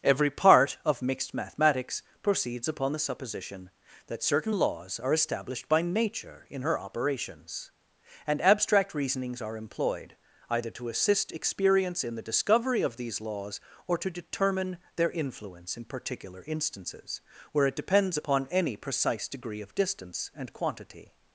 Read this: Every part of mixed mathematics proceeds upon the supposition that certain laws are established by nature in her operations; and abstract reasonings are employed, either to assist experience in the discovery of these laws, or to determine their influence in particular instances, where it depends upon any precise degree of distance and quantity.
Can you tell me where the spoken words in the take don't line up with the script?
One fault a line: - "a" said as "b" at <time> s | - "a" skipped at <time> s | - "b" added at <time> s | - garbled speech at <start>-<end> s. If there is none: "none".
none